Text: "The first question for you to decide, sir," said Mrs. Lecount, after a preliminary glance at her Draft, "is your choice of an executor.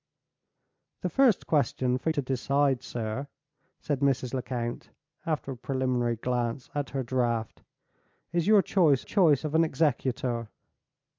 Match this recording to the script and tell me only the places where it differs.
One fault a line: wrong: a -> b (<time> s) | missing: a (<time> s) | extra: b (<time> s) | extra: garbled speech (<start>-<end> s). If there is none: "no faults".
missing: you (2.1 s)
extra: choice (9.0 s)